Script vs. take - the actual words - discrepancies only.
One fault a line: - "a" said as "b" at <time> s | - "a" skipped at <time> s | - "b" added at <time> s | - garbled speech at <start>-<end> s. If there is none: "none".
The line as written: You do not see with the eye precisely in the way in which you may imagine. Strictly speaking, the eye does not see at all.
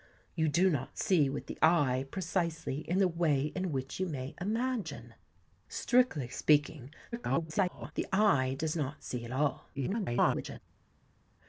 - garbled speech at 7.1-7.9 s
- garbled speech at 9.7-10.6 s